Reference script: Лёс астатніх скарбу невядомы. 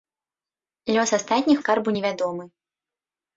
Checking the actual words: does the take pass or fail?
pass